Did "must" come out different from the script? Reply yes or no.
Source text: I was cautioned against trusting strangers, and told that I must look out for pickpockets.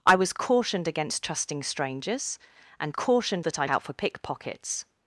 yes